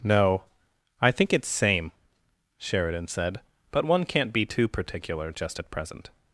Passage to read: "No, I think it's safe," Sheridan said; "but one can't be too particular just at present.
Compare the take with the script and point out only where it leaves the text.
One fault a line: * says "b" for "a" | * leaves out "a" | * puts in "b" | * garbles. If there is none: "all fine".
* says "same" for "safe"